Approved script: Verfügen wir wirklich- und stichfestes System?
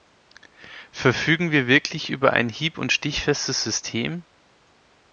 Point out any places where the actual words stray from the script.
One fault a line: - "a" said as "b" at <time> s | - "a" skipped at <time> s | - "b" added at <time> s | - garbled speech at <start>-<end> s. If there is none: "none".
- "über ein hieb" added at 2.1 s